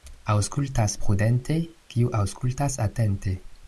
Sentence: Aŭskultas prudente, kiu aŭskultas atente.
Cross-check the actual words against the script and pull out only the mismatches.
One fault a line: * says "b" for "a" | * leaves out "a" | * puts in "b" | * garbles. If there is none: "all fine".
all fine